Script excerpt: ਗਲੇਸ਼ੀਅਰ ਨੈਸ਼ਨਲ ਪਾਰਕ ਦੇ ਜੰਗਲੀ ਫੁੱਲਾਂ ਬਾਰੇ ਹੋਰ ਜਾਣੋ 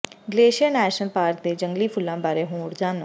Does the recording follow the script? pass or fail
pass